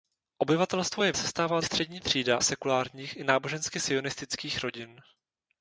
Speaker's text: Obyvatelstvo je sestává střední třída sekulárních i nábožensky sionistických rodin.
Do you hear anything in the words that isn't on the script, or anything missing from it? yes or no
no